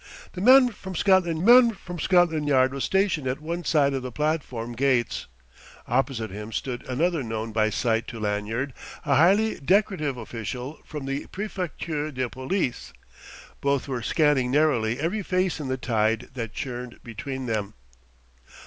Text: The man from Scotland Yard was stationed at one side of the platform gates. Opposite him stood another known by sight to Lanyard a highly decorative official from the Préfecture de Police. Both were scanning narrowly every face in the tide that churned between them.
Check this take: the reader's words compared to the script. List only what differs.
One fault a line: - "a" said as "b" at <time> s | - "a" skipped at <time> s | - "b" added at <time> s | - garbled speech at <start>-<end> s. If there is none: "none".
- "man from Scotland" added at 1.4 s